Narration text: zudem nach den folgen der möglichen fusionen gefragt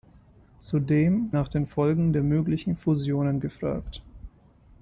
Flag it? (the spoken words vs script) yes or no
no